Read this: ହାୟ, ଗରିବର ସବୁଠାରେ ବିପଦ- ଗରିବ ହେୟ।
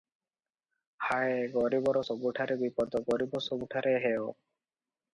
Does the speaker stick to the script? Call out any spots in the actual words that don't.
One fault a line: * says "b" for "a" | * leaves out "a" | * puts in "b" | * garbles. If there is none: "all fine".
* puts in "ସବୁଠାରେ"